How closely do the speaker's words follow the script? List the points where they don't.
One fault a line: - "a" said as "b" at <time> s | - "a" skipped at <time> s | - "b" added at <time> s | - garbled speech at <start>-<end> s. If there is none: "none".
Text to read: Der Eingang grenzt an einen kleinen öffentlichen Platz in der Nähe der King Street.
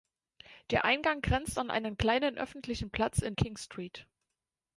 - "der Nähe der" skipped at 3.4 s